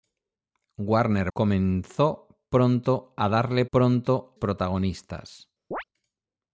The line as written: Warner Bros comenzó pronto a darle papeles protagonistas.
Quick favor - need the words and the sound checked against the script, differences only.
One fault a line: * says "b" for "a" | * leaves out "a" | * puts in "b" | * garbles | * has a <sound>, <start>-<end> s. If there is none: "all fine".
* leaves out "Bros"
* says "pronto" for "papeles"
* has a chirp, 5.7-5.8 s